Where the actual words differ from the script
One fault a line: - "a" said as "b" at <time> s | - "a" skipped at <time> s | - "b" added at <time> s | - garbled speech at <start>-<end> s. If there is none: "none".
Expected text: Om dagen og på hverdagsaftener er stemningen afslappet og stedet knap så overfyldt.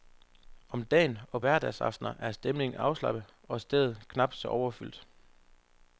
- "på" skipped at 1.4 s